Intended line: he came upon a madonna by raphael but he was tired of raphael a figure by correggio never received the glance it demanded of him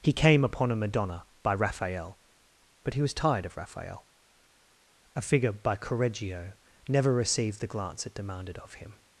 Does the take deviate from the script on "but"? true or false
false